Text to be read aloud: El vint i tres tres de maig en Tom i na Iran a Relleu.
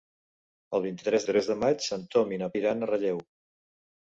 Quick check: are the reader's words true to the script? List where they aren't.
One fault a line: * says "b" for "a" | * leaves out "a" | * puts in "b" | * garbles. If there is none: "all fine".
all fine